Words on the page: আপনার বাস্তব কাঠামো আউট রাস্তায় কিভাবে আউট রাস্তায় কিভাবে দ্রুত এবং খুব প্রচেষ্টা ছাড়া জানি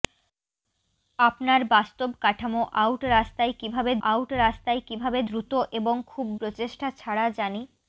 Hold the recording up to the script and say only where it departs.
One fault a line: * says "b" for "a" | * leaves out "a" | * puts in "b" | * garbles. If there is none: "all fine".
all fine